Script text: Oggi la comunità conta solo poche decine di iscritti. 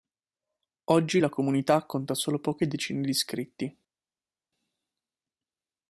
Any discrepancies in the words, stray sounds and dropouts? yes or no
no